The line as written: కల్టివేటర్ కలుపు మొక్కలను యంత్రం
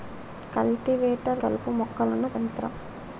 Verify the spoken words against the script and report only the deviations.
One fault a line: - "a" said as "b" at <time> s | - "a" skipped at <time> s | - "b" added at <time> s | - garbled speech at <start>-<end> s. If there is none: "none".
none